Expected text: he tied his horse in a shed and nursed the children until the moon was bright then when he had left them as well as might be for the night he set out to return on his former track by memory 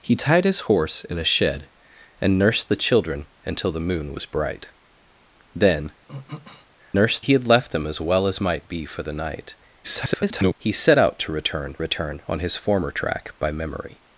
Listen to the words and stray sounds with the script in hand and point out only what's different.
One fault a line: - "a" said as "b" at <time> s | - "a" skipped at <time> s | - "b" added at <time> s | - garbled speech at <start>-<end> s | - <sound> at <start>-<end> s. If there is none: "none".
- throat clearing at 6.1-6.7 s
- "when" said as "nursed" at 6.9 s
- garbled speech at 9.8-10.6 s
- "return" added at 11.8 s